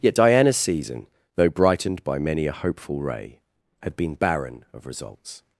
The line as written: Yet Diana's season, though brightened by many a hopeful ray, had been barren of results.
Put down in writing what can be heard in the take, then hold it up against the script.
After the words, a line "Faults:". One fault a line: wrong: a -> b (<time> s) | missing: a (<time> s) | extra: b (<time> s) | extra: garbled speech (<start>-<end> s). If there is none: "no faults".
Yet Diana's season, though brightened by many a hopeful ray, had been barren of results.
Faults:
no faults